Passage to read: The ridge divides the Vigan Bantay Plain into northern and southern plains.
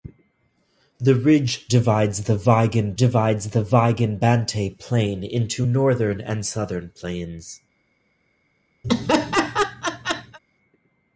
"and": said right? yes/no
yes